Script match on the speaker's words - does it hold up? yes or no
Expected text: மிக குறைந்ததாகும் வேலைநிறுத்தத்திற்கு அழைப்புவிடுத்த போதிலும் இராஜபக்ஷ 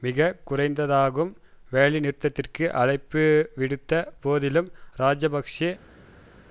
yes